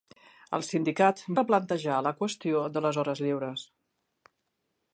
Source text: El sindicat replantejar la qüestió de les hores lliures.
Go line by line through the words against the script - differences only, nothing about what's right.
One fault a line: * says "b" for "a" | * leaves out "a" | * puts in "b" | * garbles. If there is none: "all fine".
all fine